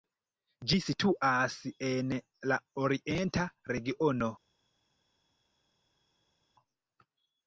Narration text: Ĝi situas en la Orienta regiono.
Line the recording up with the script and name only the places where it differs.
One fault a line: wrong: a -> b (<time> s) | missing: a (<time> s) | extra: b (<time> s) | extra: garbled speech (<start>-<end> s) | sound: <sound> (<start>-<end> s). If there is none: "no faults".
no faults